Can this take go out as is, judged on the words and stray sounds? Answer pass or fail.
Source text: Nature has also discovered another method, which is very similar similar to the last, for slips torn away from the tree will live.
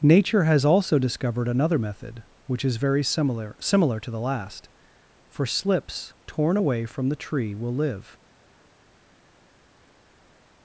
pass